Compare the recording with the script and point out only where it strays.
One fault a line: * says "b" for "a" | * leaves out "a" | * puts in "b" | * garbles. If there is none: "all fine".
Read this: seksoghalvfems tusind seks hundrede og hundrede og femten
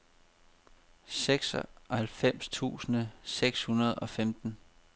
* leaves out "hundrede og"